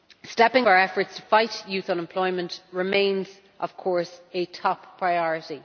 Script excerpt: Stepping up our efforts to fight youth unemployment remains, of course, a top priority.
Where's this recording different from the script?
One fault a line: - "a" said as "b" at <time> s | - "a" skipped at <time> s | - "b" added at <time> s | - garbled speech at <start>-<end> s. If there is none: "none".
- "up" skipped at 0.7 s